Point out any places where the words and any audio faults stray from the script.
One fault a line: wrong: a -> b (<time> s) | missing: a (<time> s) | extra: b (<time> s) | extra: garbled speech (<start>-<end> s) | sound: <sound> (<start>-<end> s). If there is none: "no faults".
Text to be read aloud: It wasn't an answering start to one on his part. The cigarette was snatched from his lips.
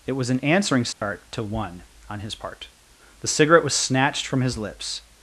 wrong: wasn't -> was (0.1 s)
sound: dropout (0.9-1.0 s)